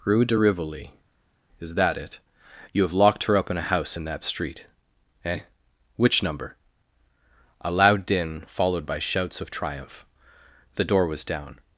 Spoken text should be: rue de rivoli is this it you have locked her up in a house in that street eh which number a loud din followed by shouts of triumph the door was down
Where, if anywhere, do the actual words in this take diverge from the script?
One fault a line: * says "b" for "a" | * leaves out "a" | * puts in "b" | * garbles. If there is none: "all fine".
* says "that" for "this"